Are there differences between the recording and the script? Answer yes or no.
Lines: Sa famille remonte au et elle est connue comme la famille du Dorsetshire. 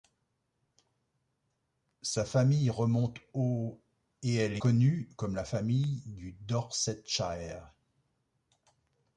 yes